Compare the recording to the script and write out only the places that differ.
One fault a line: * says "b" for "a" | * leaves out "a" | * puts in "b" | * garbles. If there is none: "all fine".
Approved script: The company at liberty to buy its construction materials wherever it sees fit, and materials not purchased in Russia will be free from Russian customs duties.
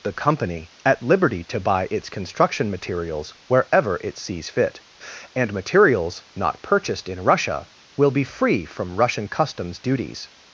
all fine